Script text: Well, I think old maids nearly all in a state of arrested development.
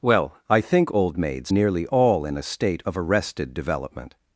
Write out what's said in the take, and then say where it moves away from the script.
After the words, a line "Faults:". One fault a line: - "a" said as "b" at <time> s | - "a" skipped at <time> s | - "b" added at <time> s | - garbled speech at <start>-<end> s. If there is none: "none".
Well, I think old maids nearly all in a state of arrested development.
Faults:
none